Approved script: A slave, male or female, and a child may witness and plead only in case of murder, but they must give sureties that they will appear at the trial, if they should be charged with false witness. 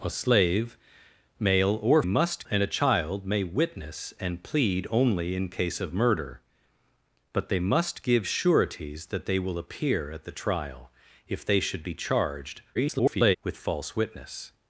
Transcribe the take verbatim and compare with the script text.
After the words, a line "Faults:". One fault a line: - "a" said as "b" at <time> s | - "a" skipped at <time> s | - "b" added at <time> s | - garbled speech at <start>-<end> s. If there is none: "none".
A slave, male or must, and a child may witness and plead only in case of murder, but they must give sureties that they will appear at the trial, if they should be charged [garbled] with false witness.
Faults:
- "female" said as "must" at 2.0 s
- garbled speech at 12.7-13.4 s